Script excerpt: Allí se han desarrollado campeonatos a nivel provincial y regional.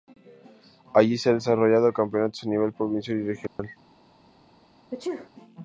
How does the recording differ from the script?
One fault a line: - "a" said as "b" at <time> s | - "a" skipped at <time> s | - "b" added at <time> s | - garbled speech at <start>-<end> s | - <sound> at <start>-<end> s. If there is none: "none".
- dropout at 3.5-3.6 s
- sneeze at 4.9-5.3 s